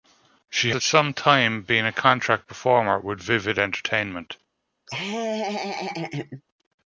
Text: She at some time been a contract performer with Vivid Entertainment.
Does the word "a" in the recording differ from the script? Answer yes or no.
no